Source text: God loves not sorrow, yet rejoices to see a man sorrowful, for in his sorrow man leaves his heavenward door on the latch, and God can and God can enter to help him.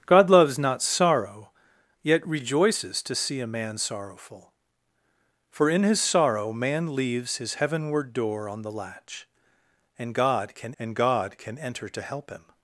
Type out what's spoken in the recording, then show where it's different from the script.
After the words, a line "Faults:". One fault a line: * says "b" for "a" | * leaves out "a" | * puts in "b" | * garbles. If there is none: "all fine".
God loves not sorrow, yet rejoices to see a man sorrowful, for in his sorrow man leaves his heavenward door on the latch, and God can and God can enter to help him.
Faults:
all fine